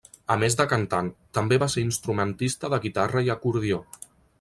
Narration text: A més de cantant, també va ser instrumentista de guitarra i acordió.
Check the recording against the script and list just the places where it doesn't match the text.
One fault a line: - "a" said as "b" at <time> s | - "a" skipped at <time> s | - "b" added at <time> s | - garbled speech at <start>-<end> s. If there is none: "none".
none